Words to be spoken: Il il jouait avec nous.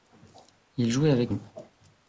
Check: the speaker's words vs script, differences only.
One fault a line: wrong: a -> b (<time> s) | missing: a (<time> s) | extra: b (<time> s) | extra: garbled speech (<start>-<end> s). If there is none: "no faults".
missing: il (0.9 s)